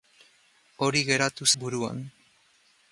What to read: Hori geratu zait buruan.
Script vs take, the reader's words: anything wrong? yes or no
yes